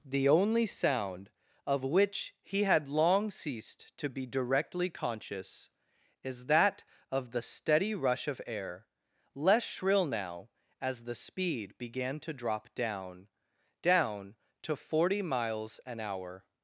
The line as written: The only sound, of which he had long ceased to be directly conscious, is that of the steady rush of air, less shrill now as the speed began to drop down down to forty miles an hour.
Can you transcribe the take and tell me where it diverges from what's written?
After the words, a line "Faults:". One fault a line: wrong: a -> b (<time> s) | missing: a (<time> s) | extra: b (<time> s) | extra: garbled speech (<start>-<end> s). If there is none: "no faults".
The only sound, of which he had long ceased to be directly conscious, is that of the steady rush of air, less shrill now as the speed began to drop down down to forty miles an hour.
Faults:
no faults